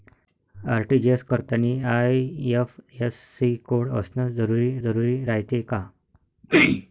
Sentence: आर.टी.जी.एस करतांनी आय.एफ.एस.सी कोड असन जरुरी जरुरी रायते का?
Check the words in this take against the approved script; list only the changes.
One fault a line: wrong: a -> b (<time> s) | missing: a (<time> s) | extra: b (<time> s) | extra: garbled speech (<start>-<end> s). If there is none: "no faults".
no faults